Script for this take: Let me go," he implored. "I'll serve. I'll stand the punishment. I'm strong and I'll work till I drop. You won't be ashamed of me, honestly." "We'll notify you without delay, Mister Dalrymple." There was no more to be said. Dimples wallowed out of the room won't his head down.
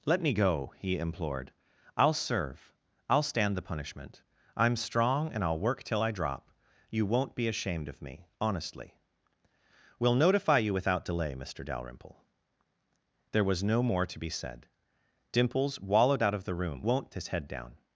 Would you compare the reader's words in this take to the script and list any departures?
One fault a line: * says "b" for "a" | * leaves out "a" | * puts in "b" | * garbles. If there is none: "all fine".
all fine